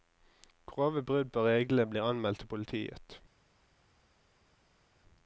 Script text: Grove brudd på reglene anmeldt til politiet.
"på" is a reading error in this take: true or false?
false